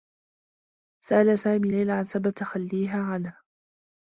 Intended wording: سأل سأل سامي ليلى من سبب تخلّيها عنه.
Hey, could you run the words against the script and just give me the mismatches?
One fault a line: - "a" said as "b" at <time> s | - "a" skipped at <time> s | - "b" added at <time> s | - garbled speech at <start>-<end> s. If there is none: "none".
- "سأل" skipped at 1.4 s
- "من" said as "عن" at 1.9 s